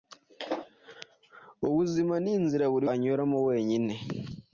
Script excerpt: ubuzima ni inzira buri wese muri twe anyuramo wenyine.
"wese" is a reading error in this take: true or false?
true